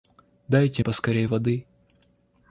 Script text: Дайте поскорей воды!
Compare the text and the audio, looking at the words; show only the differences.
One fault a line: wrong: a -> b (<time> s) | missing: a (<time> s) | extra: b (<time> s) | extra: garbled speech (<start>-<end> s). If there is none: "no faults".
no faults